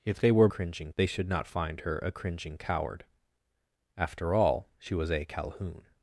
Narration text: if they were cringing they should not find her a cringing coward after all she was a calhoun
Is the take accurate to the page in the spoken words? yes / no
yes